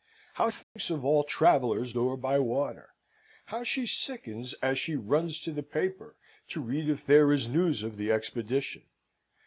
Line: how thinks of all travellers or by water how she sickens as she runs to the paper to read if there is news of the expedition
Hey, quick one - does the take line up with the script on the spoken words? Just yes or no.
yes